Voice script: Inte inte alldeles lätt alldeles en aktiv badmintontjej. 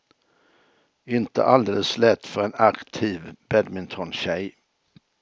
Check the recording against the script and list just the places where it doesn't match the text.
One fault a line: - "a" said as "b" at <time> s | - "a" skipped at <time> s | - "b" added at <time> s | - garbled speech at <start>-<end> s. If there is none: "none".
- "inte" skipped at 1.4 s
- "alldeles" said as "för" at 2.3 s